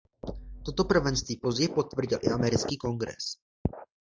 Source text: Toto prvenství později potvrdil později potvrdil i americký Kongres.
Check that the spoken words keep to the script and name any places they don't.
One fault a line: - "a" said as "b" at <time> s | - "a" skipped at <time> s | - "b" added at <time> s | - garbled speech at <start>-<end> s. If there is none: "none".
- "později potvrdil" skipped at 2.2 s